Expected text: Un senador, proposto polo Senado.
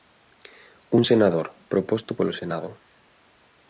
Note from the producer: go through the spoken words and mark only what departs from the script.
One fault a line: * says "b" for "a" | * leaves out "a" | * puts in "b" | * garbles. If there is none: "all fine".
all fine